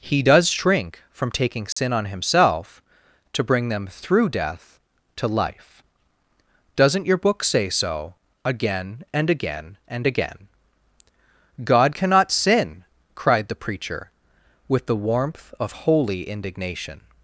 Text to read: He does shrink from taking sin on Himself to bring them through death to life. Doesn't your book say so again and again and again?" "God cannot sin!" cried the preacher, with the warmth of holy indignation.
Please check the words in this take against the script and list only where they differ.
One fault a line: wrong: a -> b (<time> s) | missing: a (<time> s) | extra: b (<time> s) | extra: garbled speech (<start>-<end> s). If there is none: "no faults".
no faults